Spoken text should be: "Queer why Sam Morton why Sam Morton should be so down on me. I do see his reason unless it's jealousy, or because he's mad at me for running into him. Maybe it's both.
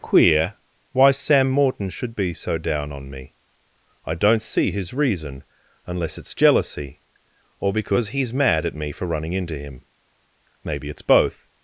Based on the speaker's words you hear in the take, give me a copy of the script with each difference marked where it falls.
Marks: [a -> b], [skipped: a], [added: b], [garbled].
"Queer why Sam Morton [skipped: why Sam Morton] should be so down on me. I [do -> don't] see his reason unless it's jealousy, or because he's mad at me for running into him. Maybe it's both.